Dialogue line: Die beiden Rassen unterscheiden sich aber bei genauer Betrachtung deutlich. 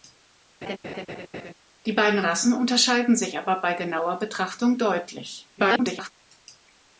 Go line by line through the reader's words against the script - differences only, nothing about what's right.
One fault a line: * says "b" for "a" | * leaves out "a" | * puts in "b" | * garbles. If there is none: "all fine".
* garbles